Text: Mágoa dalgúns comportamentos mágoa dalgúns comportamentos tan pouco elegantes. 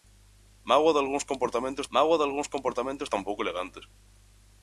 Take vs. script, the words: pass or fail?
pass